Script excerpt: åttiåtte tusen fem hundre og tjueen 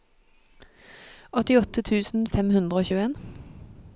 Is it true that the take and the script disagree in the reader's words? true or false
false